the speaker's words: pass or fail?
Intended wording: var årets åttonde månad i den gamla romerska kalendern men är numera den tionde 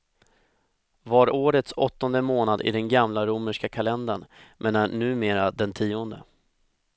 pass